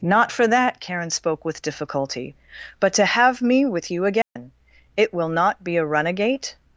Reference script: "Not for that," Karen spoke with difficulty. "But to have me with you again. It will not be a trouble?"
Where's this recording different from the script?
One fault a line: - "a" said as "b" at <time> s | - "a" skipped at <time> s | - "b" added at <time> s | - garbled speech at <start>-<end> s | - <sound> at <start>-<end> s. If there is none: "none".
- dropout at 4.2-4.4 s
- "trouble" said as "runagate" at 5.9 s